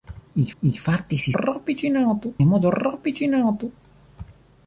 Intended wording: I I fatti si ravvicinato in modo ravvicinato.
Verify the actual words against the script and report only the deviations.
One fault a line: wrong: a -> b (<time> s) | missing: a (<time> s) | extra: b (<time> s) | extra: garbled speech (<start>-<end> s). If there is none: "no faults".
no faults